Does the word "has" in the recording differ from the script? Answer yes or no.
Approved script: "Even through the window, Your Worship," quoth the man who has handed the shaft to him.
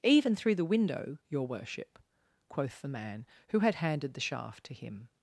yes